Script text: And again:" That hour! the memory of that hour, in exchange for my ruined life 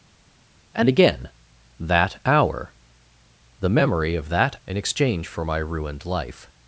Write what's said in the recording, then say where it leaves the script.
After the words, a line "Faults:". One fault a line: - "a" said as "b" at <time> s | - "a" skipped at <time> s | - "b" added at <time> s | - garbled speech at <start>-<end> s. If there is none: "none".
And again:" That hour! the memory of that in exchange for my ruined life
Faults:
- "hour" skipped at 4.5 s